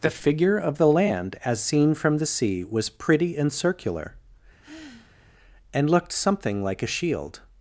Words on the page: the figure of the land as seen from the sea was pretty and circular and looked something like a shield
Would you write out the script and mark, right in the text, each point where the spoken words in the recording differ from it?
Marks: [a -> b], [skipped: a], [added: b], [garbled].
the figure of the land as seen from the sea was pretty and circular and looked something like a shield